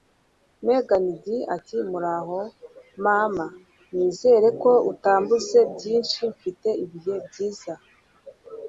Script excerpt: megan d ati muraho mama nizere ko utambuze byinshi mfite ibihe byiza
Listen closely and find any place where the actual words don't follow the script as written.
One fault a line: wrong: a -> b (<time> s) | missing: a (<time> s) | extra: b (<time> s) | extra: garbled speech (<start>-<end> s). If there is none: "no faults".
no faults